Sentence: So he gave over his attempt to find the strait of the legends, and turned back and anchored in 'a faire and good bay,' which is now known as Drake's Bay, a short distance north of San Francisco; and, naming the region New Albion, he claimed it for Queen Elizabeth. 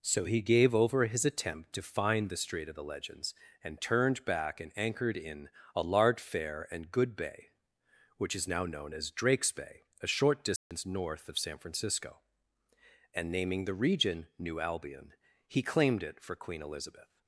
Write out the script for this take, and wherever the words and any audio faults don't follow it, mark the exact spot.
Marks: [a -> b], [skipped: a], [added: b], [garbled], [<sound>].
So he gave over his attempt to find the strait of the legends, and turned back and anchored in 'a [faire -> large fair] and good bay,' which is now known as Drake's Bay, a short distance [dropout] north of San Francisco; and, naming the region New Albion, he claimed it for Queen Elizabeth.